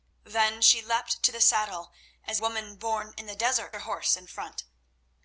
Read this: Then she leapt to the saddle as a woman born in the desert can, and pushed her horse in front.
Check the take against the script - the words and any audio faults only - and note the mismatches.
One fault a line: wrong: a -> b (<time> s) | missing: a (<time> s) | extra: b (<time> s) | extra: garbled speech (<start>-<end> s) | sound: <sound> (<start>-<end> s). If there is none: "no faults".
missing: a (2.4 s)
missing: can and pushed (3.8 s)